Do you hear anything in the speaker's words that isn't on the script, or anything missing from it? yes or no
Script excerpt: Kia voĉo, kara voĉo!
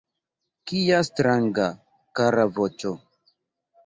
yes